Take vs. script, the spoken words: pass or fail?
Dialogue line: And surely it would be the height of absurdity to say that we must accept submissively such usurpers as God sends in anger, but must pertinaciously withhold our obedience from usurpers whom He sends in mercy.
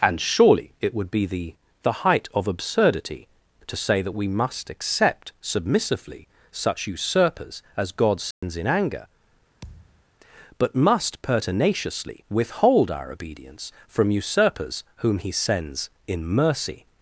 fail